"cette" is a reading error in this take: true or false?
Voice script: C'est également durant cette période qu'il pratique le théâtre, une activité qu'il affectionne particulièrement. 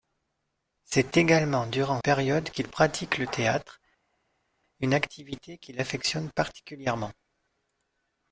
true